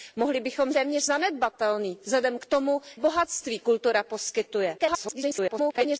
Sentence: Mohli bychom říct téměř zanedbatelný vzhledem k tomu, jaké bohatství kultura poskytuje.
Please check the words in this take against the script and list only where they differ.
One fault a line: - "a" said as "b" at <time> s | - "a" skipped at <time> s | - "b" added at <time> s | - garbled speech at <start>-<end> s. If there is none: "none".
- "říct" skipped at 0.7 s
- "jaké" skipped at 2.8 s
- garbled speech at 4.8-6.0 s